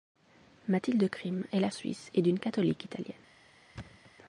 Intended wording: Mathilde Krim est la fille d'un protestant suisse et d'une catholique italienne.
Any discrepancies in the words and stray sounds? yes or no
yes